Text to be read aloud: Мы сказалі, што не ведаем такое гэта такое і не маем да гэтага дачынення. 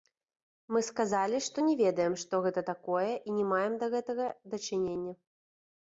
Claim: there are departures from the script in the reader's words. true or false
true